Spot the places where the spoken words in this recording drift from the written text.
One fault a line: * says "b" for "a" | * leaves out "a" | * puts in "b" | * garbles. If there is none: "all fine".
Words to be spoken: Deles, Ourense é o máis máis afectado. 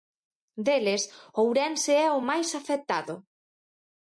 * leaves out "máis"